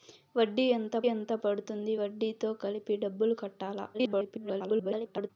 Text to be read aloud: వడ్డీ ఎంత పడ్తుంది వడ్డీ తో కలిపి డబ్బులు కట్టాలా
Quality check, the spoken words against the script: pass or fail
fail